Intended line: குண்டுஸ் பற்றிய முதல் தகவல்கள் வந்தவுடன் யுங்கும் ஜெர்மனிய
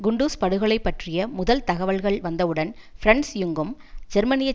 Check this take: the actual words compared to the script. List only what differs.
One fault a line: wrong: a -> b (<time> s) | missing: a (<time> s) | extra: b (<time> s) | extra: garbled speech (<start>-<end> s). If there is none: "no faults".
extra: படுகொலை (0.4 s)
extra: பிரன்ஸ் (3.0 s)